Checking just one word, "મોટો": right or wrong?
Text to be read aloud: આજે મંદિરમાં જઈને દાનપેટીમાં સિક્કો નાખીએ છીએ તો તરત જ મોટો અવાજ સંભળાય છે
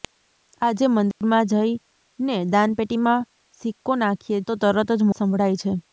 wrong